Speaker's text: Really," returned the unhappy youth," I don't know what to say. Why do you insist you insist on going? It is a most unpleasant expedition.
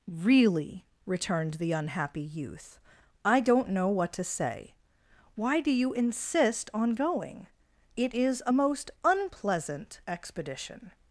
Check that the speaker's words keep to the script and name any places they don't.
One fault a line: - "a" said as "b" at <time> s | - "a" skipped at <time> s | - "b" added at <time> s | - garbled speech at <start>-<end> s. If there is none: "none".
- "you insist" skipped at 6.7 s